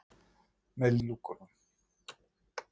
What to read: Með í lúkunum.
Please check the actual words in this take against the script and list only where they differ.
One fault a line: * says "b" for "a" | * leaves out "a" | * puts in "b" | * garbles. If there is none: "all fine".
all fine